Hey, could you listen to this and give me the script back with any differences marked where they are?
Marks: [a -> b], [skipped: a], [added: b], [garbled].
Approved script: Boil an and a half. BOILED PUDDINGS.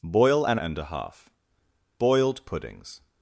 Boil an and a half. BOILED PUDDINGS.